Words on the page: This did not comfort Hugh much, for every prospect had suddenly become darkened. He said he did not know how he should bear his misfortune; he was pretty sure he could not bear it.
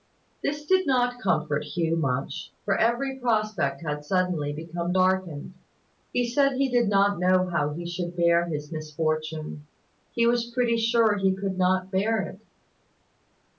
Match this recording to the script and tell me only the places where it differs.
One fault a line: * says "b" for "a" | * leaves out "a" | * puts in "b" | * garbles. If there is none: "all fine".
all fine